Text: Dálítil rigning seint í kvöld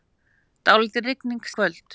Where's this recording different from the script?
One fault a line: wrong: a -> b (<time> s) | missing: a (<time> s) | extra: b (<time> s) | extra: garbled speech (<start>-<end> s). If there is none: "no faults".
missing: seint (1.4 s)